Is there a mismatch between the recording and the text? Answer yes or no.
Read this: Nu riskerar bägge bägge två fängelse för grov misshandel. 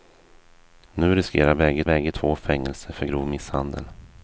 no